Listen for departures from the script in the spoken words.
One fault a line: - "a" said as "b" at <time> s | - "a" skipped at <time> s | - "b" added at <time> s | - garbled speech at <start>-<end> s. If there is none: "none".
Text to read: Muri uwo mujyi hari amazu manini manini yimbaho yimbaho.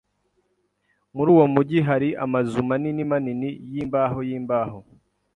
none